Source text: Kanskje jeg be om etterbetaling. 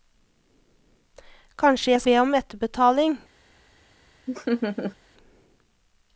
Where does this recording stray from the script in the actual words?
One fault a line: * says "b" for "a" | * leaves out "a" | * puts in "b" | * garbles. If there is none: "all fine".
all fine